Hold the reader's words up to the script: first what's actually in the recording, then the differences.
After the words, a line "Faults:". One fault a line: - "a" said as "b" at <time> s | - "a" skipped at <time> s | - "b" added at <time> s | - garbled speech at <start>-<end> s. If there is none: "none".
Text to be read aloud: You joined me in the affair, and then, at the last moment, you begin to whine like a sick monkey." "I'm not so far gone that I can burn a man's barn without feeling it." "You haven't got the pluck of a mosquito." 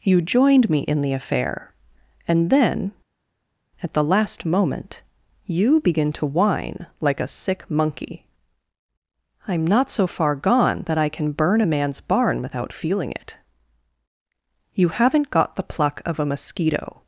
You joined me in the affair, and then, at the last moment, you begin to whine like a sick monkey." "I'm not so far gone that I can burn a man's barn without feeling it." "You haven't got the pluck of a mosquito."
Faults:
none